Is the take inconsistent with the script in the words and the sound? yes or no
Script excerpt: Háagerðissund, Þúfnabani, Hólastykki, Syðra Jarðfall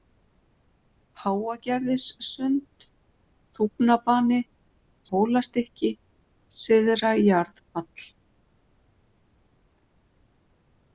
no